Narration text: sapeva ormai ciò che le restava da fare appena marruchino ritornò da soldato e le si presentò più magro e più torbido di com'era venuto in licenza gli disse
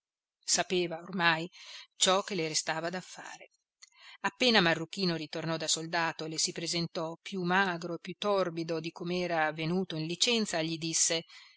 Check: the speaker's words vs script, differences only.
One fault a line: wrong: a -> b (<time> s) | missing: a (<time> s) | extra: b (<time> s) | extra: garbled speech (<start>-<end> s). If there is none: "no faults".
no faults